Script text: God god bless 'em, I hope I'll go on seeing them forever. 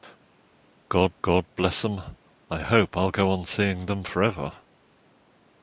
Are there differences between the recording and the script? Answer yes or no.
no